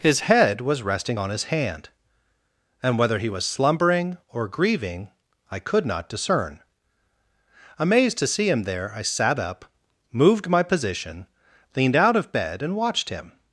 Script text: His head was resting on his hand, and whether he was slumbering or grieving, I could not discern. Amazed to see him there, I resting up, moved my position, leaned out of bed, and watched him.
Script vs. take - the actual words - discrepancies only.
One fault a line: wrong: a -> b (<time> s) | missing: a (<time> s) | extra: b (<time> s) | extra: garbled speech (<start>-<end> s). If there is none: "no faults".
wrong: resting -> sat (9.0 s)